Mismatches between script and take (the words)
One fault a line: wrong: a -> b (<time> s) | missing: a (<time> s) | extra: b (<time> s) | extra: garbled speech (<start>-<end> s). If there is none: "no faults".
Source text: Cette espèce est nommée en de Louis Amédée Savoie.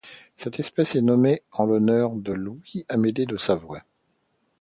extra: l'honneur (1.7 s)
extra: de (3.3 s)